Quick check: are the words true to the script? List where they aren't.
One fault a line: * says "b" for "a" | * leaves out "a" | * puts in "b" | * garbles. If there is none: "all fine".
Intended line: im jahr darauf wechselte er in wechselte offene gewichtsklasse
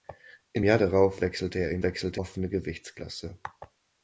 all fine